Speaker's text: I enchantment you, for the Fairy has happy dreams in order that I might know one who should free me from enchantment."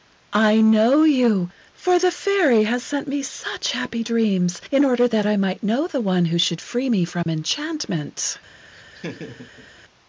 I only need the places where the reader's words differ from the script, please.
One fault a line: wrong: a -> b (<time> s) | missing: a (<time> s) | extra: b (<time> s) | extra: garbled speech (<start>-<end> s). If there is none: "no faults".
wrong: enchantment -> know (0.6 s)
extra: sent me such (2.8 s)
extra: the (5.9 s)